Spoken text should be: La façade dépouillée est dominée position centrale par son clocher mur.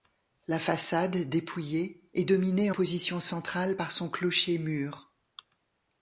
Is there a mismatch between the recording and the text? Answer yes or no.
no